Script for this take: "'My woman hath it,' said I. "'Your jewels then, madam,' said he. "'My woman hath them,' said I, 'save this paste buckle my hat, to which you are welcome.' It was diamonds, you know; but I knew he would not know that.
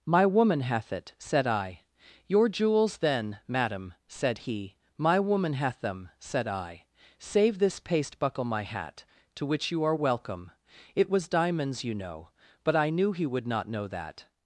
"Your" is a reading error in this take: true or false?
false